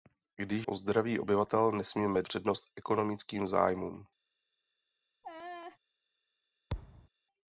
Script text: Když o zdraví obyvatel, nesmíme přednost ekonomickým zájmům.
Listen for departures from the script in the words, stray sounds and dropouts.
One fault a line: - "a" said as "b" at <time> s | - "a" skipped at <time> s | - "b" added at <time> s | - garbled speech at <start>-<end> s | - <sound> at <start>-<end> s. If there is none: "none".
- laugh at 5.2-5.8 s
- thud at 6.7-7.1 s